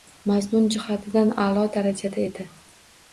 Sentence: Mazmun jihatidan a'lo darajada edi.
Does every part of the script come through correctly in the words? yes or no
yes